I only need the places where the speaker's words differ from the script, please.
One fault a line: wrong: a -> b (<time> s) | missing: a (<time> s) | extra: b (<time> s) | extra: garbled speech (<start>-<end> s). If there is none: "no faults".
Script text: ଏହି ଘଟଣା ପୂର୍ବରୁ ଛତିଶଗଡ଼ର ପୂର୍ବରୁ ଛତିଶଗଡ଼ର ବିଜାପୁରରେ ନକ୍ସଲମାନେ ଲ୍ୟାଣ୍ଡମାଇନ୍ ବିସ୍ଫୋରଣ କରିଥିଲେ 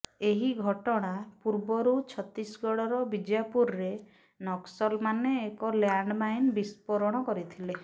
missing: ପୂର୍ବରୁ ଛତିଶଗଡ଼ର (3.0 s)
extra: ଏକ (5.4 s)